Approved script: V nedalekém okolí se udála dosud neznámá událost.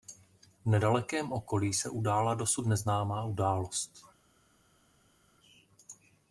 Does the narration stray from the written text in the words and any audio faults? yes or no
no